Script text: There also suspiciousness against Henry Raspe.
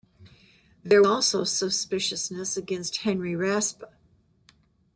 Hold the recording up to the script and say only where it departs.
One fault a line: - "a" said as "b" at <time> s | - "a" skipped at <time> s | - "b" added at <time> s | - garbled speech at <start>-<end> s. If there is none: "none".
none